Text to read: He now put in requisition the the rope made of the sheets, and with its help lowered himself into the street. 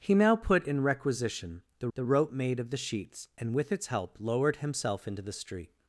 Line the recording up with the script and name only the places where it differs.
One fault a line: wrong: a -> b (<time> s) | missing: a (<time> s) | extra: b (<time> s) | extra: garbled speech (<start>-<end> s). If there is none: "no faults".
no faults